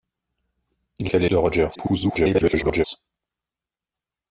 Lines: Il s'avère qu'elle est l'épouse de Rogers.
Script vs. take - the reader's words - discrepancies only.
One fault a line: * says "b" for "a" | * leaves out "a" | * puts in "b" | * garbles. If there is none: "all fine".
* leaves out "s'avère"
* leaves out "l'épouse"
* garbles